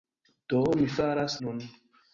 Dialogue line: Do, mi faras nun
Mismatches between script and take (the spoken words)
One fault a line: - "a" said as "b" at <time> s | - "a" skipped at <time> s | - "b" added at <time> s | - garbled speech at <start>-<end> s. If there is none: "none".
none